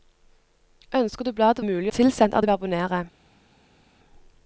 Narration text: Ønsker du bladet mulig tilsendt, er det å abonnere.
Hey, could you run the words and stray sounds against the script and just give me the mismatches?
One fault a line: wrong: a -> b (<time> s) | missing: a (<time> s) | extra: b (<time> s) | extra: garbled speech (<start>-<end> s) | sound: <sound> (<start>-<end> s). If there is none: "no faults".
no faults